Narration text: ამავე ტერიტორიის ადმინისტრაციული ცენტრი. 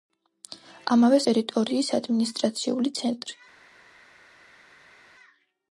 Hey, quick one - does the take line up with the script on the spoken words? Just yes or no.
yes